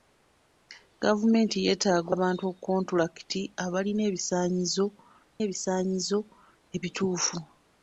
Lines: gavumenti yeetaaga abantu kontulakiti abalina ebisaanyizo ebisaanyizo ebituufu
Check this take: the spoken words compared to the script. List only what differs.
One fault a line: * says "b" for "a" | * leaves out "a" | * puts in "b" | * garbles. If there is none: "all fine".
all fine